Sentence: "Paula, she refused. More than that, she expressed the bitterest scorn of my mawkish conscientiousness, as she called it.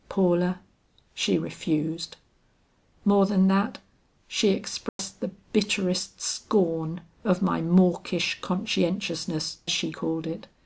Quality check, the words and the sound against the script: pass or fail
fail